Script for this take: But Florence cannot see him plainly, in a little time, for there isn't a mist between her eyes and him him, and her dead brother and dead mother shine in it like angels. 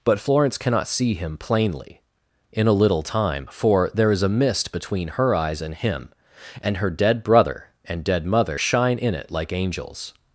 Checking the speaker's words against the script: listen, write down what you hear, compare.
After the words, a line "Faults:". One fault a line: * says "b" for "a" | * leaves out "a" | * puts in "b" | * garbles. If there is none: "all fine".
But Florence cannot see him plainly, in a little time, for there is a mist between her eyes and him, and her dead brother and dead mother shine in it like angels.
Faults:
* says "is" for "isn't"
* leaves out "him"